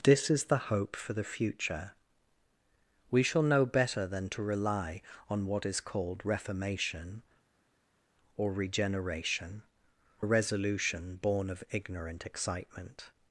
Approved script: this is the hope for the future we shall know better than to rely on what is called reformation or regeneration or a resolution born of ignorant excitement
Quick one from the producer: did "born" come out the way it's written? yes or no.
yes